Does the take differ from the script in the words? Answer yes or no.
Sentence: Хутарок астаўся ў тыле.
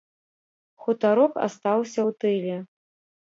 no